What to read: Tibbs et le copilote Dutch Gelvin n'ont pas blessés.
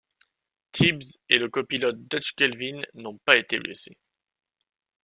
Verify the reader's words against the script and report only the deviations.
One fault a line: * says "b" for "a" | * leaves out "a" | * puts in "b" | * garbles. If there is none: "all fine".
* puts in "été"